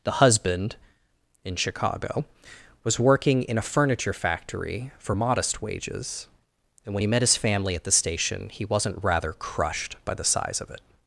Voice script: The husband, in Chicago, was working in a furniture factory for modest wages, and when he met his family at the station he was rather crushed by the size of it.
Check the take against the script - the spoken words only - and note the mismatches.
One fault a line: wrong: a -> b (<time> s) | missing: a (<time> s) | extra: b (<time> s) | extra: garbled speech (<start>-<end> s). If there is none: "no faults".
wrong: was -> wasn't (8.6 s)